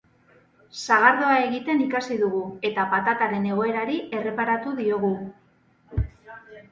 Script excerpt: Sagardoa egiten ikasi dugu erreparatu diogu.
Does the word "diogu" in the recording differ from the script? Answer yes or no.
no